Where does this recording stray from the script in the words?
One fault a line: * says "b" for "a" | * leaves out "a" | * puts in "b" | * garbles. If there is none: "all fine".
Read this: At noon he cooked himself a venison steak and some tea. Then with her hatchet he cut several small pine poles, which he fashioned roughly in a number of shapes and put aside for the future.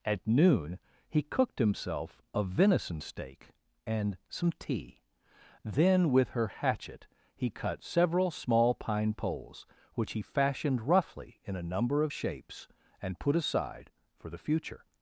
all fine